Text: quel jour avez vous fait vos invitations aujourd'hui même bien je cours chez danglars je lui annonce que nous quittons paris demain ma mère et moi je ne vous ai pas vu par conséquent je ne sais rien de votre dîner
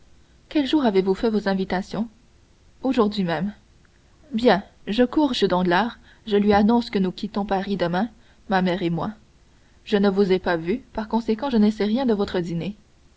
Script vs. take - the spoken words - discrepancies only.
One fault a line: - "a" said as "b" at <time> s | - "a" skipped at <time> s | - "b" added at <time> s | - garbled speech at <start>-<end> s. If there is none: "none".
none